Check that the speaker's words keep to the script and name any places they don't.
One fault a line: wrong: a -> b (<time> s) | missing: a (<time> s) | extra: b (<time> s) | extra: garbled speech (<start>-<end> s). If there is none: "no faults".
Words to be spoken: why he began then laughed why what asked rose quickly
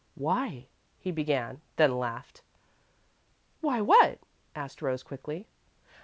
no faults